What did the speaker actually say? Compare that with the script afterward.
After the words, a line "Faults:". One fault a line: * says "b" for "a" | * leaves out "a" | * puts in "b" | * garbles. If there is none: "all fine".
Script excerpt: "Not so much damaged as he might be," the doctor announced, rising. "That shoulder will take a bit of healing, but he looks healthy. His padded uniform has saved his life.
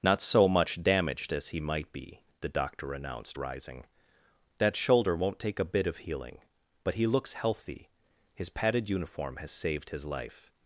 "Not so much damaged as he might be," the doctor announced, rising. "That shoulder won't take a bit of healing, but he looks healthy. His padded uniform has saved his life.
Faults:
* says "won't" for "will"